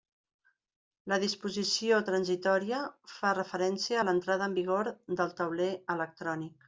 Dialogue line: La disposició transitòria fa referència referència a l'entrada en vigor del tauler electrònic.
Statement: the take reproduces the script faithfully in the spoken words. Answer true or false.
false